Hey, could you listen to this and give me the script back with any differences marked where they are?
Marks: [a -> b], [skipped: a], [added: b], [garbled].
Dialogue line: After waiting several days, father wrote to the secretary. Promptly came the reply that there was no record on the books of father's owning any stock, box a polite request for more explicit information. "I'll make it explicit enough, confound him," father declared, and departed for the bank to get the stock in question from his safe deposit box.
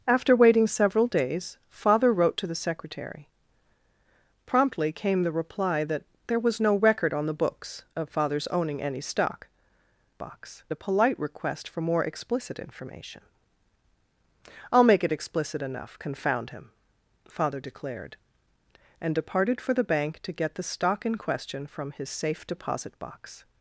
After waiting several days, father wrote to the secretary. Promptly came the reply that there was no record on the books of father's owning any stock, box a polite request for more explicit information. "I'll make it explicit enough, confound him," father declared, and departed for the bank to get the stock in question from his safe deposit box.